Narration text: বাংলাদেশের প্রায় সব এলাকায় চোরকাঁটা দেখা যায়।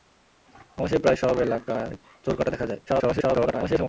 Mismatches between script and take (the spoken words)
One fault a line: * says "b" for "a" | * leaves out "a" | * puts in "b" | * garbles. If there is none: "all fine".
* garbles